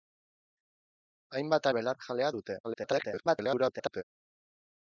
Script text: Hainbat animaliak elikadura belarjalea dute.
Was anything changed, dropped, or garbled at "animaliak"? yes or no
yes